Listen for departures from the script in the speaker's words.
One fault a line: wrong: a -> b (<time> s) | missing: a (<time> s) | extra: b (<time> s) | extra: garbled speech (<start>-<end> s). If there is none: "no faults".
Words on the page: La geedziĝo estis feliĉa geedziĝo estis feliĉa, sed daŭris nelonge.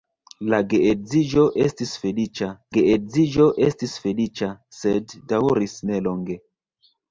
no faults